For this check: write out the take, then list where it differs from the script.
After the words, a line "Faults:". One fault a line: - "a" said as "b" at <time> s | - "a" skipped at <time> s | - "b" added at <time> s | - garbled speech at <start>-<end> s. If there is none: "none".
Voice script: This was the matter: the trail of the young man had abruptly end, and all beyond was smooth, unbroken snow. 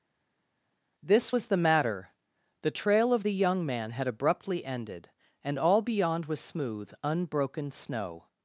This was the matter: the trail of the young man had abruptly ended, and all beyond was smooth, unbroken snow.
Faults:
- "end" said as "ended" at 4.6 s